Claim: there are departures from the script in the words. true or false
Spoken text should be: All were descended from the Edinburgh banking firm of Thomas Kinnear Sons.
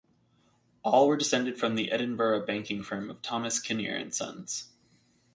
true